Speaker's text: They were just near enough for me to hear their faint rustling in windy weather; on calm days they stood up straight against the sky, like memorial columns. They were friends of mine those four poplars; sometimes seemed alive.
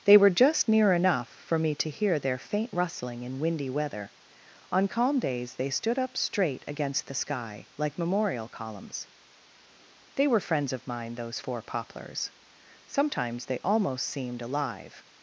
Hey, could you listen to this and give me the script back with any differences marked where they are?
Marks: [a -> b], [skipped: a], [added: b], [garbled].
They were just near enough for me to hear their faint rustling in windy weather; on calm days they stood up straight against the sky, like memorial columns. They were friends of mine those four poplars; sometimes [added: they almost] seemed alive.